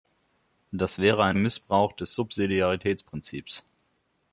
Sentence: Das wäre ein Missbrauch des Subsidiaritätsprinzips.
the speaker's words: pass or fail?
pass